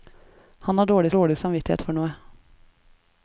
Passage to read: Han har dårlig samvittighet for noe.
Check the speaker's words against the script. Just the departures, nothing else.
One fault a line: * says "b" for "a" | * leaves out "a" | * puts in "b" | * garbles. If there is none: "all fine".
* puts in "dårlig"